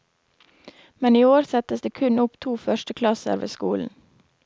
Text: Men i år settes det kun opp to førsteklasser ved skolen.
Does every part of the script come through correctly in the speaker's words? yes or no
yes